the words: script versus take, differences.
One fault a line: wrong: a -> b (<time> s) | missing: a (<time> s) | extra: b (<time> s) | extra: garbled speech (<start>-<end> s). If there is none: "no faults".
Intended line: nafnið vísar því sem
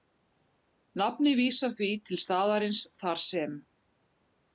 extra: til staðarins þar (2.1 s)